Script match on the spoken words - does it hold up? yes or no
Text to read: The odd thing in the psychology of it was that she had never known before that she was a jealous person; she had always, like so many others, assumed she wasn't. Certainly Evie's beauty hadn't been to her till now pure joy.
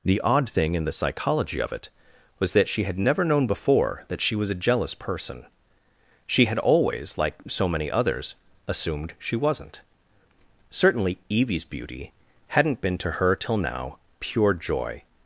yes